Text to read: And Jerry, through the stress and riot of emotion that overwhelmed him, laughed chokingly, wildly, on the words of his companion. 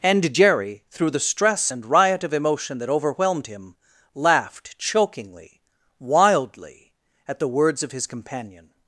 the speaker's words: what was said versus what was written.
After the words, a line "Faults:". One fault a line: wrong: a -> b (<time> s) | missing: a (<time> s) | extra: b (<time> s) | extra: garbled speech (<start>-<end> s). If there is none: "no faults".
And Jerry, through the stress and riot of emotion that overwhelmed him, laughed chokingly, wildly, at the words of his companion.
Faults:
wrong: on -> at (7.3 s)